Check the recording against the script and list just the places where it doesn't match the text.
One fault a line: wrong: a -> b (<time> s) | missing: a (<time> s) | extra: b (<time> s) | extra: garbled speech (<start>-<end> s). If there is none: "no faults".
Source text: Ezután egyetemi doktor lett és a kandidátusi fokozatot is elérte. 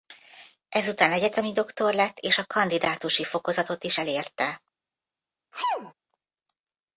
no faults